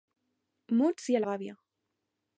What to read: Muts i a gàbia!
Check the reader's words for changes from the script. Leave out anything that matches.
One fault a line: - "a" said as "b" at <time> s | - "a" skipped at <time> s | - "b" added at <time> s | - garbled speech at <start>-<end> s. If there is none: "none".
none